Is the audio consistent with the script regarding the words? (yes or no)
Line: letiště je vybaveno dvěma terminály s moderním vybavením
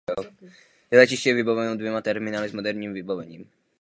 yes